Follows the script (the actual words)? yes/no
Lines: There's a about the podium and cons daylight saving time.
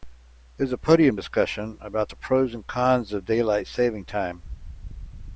no